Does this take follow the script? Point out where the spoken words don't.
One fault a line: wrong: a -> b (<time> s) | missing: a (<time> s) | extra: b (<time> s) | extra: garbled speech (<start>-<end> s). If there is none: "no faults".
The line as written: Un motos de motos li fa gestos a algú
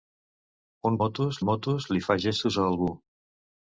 no faults